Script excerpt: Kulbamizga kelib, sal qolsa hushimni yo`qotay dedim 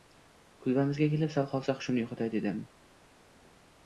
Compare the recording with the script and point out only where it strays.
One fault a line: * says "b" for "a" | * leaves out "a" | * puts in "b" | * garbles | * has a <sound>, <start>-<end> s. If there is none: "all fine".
all fine